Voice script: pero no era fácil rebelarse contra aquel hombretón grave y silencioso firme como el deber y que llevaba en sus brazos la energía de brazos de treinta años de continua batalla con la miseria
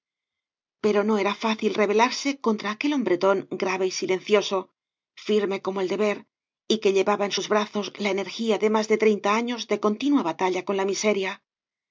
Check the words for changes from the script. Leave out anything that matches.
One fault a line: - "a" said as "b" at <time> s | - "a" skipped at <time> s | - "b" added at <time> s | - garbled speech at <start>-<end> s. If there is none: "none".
- "brazos" said as "más" at 8.7 s